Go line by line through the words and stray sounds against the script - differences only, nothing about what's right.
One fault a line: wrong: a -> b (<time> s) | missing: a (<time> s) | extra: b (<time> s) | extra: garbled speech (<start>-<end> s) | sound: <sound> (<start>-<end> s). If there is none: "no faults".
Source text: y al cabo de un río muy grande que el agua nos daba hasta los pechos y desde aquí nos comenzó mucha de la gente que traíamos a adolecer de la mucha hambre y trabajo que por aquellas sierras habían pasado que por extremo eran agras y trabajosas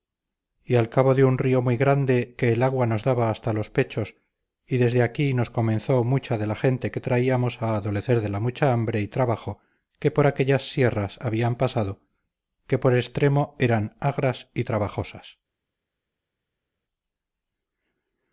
no faults